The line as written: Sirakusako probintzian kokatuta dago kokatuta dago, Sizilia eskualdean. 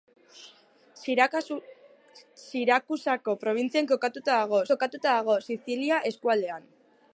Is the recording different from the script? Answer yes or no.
no